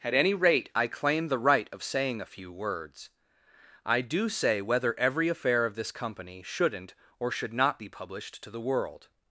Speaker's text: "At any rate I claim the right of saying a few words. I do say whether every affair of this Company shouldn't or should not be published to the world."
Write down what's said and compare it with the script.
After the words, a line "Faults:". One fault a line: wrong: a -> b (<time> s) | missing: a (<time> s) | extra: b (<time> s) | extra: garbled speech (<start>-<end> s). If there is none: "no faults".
"At any rate I claim the right of saying a few words. I do say whether every affair of this Company shouldn't or should not be published to the world."
Faults:
no faults